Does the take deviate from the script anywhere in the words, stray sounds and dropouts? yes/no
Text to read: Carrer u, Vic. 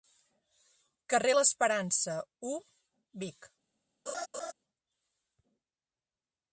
yes